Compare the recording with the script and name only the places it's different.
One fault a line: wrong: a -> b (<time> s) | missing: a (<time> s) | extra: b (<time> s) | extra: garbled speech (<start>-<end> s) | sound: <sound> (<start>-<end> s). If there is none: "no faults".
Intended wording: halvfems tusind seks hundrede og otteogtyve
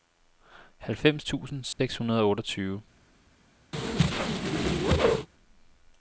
sound: dropout (1.7-1.8 s)
sound: whoosh (3.7-5.3 s)